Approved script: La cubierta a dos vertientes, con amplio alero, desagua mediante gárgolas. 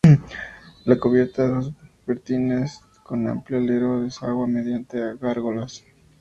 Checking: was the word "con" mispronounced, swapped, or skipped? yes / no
no